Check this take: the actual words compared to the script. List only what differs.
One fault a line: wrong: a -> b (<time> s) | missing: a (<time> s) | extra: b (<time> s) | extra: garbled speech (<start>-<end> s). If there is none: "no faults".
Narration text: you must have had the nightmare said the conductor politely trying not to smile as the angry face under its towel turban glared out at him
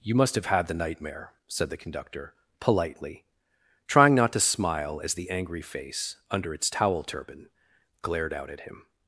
no faults